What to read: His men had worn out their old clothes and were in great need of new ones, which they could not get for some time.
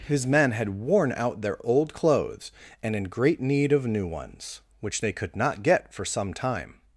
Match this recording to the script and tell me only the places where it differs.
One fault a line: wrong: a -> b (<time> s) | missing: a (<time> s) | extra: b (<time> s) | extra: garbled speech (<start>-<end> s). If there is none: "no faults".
missing: were (3.0 s)